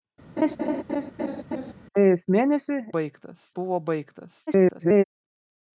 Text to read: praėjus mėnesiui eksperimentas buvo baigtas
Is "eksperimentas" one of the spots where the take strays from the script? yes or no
yes